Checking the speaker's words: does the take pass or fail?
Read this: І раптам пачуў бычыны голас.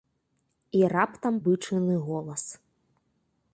fail